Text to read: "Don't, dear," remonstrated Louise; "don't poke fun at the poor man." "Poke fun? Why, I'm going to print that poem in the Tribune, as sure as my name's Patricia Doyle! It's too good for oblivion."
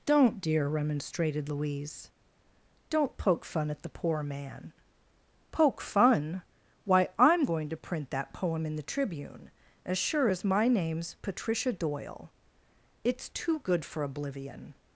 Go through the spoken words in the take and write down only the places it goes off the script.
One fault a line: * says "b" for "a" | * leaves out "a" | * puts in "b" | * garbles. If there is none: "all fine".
all fine